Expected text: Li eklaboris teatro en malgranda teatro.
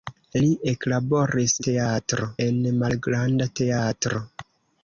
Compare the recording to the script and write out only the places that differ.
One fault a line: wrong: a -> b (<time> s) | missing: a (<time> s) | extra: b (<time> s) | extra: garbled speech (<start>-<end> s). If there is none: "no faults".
no faults